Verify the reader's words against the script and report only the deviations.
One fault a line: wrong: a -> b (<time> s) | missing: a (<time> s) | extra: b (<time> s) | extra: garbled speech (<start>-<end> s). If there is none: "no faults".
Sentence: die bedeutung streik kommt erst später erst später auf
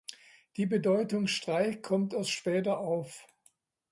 missing: erst später (2.8 s)